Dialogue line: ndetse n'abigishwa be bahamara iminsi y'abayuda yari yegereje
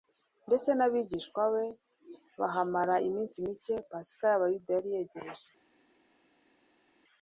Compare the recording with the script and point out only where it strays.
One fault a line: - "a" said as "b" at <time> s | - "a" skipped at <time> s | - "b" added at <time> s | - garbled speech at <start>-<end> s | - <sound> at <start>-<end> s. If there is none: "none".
- "mike pasika" added at 3.4 s